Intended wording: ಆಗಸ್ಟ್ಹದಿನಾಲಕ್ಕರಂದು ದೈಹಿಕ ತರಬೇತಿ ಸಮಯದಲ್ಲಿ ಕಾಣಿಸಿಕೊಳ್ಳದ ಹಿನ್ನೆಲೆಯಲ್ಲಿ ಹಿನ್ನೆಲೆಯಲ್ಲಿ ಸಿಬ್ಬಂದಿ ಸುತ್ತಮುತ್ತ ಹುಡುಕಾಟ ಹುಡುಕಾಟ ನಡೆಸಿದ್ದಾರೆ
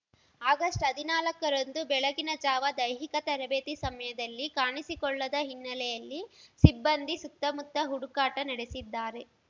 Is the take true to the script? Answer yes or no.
no